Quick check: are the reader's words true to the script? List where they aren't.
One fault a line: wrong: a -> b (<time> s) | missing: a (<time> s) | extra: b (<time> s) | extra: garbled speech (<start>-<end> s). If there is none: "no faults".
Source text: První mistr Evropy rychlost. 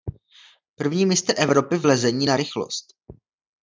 extra: v lezení na (1.8 s)